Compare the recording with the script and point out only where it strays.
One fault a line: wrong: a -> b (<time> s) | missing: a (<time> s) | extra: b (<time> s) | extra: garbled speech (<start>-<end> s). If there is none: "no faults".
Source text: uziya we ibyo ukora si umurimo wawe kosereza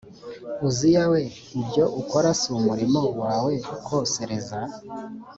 no faults